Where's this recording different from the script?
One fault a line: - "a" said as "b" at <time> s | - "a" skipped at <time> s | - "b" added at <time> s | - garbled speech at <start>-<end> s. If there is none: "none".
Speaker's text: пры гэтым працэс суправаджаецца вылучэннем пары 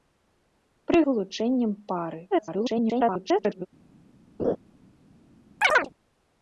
- "гэтым працэс суправаджаецца" skipped at 1.0 s
- garbled speech at 2.3-3.7 s